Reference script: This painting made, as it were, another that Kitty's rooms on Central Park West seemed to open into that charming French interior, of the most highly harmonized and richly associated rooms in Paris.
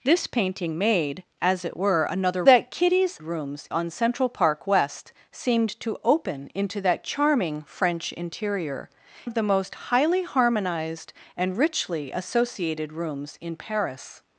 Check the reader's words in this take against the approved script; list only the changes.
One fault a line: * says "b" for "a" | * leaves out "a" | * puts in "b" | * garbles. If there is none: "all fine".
all fine